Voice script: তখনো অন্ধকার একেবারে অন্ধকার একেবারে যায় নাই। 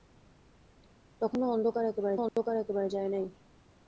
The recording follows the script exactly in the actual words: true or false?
true